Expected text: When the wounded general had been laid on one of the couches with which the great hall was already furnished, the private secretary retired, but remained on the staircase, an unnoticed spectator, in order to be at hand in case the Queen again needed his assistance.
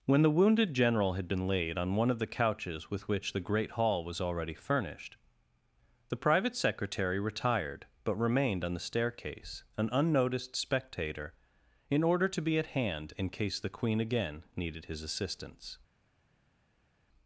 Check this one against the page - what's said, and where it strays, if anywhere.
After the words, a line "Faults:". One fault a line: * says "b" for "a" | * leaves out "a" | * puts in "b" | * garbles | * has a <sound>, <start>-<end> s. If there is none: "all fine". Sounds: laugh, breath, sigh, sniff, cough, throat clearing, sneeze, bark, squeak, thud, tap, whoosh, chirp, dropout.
When the wounded general had been laid on one of the couches with which the great hall was already furnished, the private secretary retired, but remained on the staircase, an unnoticed spectator, in order to be at hand in case the Queen again needed his assistance.
Faults:
all fine